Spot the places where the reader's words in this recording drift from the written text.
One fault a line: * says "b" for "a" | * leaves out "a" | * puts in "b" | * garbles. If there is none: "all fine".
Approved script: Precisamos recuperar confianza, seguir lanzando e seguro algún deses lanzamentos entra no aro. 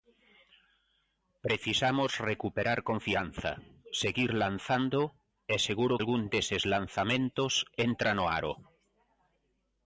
all fine